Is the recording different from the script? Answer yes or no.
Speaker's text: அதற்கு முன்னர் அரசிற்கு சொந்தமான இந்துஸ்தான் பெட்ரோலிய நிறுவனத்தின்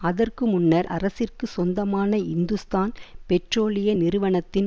no